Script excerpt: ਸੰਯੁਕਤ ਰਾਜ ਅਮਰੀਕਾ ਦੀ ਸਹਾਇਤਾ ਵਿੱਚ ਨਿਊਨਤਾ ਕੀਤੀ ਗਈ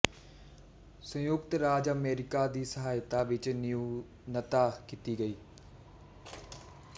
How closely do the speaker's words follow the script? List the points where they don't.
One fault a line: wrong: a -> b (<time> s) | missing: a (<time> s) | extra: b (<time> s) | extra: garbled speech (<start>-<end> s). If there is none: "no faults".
no faults